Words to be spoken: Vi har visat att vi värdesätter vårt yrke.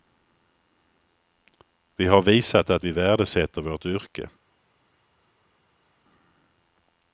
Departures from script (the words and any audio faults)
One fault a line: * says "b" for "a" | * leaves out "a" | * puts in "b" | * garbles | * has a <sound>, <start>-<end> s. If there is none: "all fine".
all fine